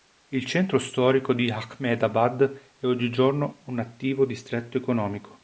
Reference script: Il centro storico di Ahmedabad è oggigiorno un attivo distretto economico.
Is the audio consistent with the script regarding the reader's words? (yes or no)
yes